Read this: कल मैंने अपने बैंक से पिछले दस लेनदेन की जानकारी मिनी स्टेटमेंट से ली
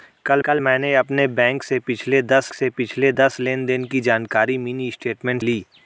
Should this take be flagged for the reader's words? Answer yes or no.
yes